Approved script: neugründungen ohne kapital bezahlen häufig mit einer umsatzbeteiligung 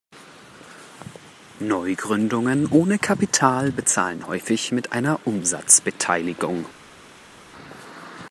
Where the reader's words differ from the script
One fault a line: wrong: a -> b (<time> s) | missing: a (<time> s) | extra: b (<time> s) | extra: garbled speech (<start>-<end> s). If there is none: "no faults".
no faults